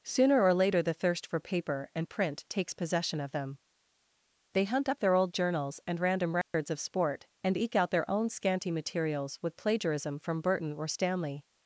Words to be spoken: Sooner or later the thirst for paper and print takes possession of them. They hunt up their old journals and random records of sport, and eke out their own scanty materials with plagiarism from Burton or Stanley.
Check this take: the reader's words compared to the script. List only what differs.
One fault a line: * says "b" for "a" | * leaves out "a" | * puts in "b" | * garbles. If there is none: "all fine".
all fine